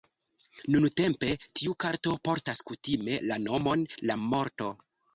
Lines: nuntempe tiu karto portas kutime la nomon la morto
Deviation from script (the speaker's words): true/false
false